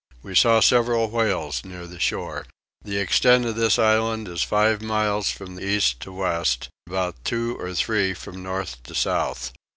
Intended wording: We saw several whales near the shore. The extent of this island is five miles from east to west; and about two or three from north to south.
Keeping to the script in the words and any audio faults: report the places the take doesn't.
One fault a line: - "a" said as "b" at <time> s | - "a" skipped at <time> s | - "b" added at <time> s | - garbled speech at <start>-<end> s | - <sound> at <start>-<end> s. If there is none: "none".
- "and" skipped at 6.7 s